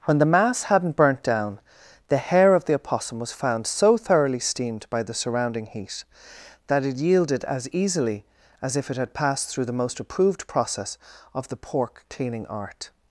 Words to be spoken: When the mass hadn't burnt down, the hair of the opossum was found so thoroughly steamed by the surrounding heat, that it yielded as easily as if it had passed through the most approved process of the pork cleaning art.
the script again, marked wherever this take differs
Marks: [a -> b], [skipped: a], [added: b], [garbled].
When the mass hadn't burnt down, the hair of the opossum was found so thoroughly steamed by the surrounding heat, that it yielded as easily as if it had passed through the most approved process of the pork cleaning art.